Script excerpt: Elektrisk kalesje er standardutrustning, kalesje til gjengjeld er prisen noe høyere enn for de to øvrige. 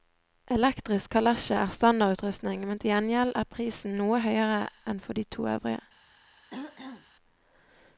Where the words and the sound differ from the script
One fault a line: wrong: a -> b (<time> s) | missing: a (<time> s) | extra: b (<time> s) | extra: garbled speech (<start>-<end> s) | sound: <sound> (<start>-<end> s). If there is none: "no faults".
wrong: kalesje -> men (2.7 s)
sound: throat clearing (6.5-7.1 s)